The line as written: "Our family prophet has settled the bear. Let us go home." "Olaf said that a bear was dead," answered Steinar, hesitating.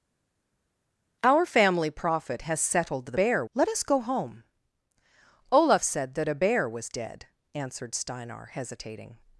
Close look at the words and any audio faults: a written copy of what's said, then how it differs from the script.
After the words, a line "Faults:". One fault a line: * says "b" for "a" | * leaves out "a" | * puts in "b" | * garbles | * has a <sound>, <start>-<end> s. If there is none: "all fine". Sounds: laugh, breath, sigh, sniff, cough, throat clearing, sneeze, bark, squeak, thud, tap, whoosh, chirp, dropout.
"Our family prophet has settled the bear. Let us go home." "Olaf said that a bear was dead," answered Steinar, hesitating.
Faults:
all fine